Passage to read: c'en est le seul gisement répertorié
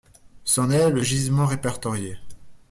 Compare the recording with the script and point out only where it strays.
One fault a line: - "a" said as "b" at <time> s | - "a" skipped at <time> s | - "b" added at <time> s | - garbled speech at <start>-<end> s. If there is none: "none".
- "seul" skipped at 1.0 s